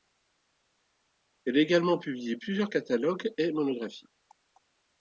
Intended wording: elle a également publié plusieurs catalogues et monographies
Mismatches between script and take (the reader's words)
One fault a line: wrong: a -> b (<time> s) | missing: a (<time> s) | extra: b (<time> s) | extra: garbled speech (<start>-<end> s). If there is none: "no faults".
no faults